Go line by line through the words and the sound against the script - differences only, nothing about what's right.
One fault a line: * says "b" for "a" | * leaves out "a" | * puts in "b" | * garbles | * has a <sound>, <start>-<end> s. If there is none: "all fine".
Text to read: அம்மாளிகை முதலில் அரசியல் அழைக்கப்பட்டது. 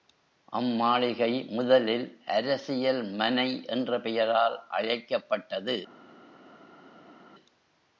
* puts in "மனை என்ற பெயரால்"